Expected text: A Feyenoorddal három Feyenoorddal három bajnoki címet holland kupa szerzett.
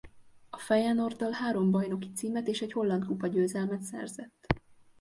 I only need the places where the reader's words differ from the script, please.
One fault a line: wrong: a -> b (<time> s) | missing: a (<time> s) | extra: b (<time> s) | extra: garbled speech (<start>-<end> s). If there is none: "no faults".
wrong: Feyenoorddal három bajnoki címet -> bajnoki címet és egy (1.7 s)
extra: győzelmet (3.3 s)